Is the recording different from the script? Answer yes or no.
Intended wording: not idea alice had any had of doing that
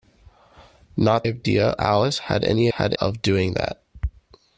no